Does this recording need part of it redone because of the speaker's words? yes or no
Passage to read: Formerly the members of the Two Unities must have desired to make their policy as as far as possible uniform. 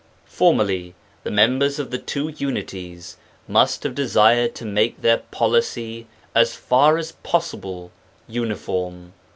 yes